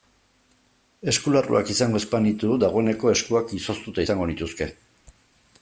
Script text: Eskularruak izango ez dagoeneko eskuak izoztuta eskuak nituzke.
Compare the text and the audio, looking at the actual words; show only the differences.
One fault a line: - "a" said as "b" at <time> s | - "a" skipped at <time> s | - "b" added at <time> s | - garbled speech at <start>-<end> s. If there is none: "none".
- "banitu" added at 2.1 s
- "eskuak" said as "izango" at 4.0 s